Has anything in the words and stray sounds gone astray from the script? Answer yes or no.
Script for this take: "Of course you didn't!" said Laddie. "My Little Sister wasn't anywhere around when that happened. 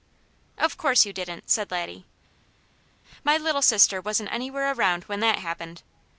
no